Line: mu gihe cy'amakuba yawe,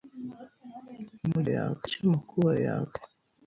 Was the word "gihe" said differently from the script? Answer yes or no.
yes